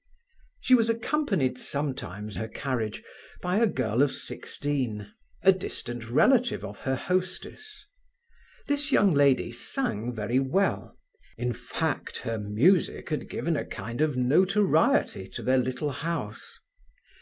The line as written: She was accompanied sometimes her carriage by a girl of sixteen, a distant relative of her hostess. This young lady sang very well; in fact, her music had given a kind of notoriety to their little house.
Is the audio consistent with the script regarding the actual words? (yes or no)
yes